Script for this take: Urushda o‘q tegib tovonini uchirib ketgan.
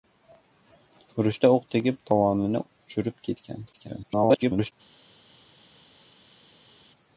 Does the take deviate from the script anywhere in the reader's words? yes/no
yes